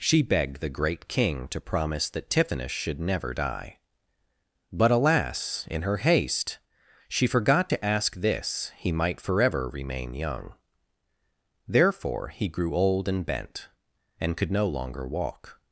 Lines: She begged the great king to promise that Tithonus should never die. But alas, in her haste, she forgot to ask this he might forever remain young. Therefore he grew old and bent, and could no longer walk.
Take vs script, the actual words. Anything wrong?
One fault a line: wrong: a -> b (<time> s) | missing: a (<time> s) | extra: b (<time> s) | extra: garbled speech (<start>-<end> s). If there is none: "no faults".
no faults